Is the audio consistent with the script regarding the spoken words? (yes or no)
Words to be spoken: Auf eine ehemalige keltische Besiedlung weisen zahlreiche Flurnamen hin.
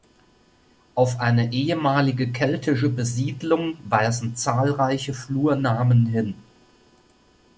yes